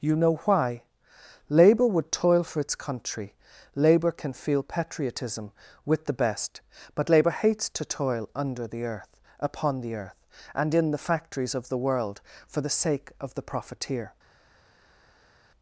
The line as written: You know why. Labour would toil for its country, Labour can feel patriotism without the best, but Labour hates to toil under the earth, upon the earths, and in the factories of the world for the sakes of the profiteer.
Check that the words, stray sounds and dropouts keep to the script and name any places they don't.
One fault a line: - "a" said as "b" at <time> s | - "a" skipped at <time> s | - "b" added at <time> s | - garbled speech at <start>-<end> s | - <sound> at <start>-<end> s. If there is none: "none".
- "without" said as "with" at 5.8 s
- "earths" said as "earth" at 9.9 s
- "sakes" said as "sake" at 12.8 s